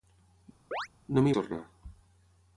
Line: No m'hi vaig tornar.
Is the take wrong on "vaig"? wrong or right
wrong